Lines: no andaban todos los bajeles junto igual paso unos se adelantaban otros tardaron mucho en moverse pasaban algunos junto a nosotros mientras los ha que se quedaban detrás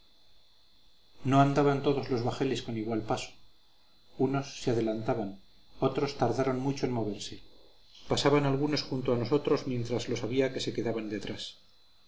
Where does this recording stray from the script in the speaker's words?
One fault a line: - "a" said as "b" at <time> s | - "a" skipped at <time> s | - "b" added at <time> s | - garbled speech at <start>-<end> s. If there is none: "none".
- "junto" said as "con" at 2.6 s
- "ha" said as "había" at 10.2 s